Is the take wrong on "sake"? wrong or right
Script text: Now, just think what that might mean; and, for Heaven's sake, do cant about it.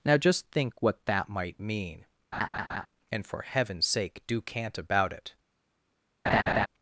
right